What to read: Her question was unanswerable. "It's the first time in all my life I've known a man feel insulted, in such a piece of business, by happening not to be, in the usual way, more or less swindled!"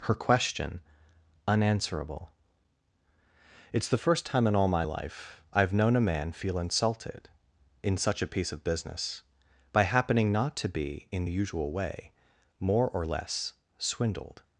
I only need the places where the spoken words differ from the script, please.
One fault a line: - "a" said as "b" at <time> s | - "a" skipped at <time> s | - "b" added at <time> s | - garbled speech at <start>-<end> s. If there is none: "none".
- "was" skipped at 0.8 s